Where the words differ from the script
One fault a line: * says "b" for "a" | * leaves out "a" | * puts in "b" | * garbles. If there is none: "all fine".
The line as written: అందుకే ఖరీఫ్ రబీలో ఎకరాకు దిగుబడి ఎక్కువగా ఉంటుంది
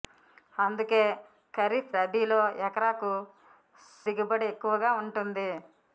all fine